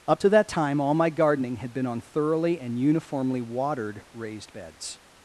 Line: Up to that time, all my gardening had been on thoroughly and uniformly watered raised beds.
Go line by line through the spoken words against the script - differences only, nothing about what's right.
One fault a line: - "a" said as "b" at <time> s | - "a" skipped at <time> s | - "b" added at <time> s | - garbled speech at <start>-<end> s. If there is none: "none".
none